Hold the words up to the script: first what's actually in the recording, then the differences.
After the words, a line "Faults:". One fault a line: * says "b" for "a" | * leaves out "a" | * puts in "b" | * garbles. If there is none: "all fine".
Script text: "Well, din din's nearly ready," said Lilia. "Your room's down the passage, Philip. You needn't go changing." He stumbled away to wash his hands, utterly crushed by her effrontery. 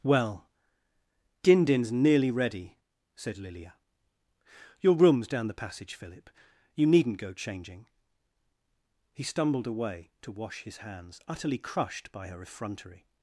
"Well, din din's nearly ready," said Lilia. "Your room's down the passage, Philip. You needn't go changing." He stumbled away to wash his hands, utterly crushed by her effrontery.
Faults:
all fine